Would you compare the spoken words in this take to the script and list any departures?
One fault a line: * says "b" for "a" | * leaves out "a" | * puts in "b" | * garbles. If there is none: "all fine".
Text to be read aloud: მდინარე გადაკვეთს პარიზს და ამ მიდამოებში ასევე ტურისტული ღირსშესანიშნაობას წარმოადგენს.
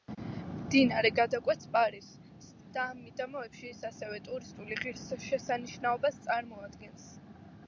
* puts in "ის"